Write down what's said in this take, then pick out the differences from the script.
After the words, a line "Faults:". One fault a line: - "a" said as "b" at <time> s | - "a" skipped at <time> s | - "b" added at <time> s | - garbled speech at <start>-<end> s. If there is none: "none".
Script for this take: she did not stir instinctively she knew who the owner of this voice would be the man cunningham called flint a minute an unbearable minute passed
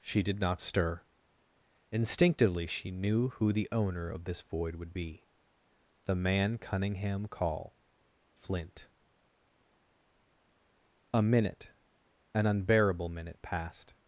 she did not stir instinctively she knew who the owner of this void would be the man cunningham call flint a minute an unbearable minute passed
Faults:
- "voice" said as "void" at 4.4 s
- "called" said as "call" at 7.3 s